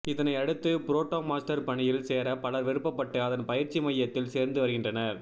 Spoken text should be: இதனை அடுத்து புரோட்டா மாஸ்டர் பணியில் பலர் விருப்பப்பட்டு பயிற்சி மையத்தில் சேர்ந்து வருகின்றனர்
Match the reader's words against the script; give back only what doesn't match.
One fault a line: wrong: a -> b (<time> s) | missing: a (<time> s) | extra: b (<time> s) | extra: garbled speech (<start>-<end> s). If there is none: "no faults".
extra: சேர (2.0 s)
extra: அதன் (3.2 s)